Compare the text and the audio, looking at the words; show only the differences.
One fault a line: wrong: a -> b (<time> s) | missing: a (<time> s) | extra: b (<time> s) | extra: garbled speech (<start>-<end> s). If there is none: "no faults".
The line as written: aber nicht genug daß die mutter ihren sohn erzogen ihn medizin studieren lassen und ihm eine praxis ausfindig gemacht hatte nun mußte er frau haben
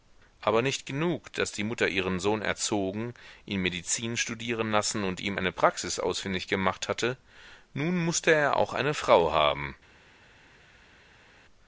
extra: auch eine (8.5 s)